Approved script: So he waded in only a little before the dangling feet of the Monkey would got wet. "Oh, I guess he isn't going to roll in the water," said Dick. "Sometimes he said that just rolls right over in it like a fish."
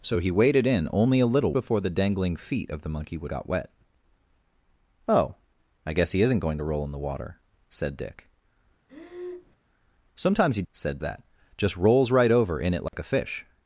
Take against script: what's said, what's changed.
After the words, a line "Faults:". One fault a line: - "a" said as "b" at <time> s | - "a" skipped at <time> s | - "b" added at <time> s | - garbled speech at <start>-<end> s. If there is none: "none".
So he waded in only a little before the dangling feet of the Monkey would got wet. "Oh, I guess he isn't going to roll in the water," said Dick. "Sometimes he said that just rolls right over in it like a fish."
Faults:
none